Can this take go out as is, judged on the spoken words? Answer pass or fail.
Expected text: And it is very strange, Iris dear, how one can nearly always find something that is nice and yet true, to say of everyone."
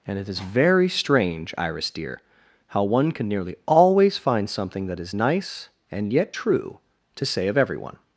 pass